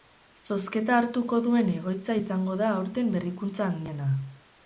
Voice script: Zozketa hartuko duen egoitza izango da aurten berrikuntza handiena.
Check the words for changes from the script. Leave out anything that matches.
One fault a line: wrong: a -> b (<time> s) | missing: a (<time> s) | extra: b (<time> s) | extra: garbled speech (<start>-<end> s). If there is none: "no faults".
no faults